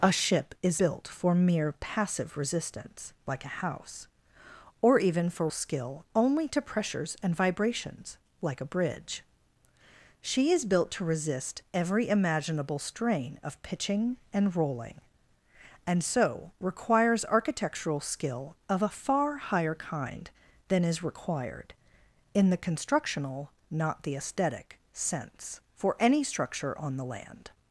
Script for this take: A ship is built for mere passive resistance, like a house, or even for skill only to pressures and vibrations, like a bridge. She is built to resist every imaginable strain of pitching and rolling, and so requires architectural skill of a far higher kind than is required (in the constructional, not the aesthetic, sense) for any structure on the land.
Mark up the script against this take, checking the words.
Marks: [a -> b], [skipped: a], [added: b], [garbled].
A ship is built for mere passive resistance, like a house, or even for skill only to pressures and vibrations, like a bridge. She is built to resist every imaginable strain of pitching and rolling, and so requires architectural skill of a far higher kind than is required (in the constructional, not the aesthetic, sense) for any structure on the land.